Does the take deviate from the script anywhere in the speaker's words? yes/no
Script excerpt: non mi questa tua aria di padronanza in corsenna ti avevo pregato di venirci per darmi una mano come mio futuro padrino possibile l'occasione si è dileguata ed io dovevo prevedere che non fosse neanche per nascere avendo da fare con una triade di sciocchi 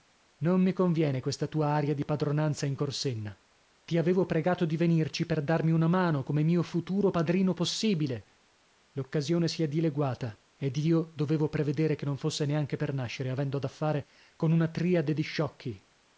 yes